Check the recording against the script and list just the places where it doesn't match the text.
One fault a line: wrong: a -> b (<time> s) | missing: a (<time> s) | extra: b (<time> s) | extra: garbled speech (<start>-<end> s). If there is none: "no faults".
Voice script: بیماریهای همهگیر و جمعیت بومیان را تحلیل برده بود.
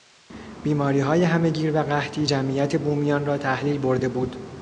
extra: قحطی (1.8 s)